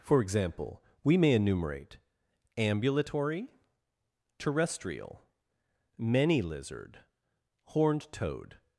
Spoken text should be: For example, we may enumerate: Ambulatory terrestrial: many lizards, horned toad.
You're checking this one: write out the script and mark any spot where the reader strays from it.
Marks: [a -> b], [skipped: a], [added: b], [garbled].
For example, we may enumerate: Ambulatory terrestrial: many [lizards, -> lizard] horned toad.